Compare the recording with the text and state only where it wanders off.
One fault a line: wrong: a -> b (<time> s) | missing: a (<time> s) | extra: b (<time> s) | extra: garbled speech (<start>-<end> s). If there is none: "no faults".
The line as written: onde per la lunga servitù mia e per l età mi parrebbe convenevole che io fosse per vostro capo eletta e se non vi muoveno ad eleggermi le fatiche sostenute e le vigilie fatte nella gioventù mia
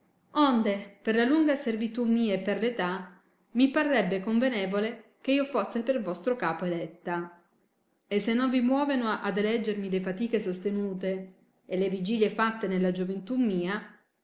no faults